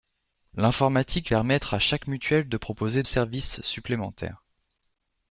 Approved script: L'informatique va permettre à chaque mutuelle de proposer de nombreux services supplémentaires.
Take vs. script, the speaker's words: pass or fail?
fail